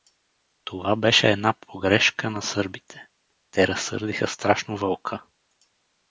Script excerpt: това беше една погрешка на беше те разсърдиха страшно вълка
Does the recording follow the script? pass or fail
fail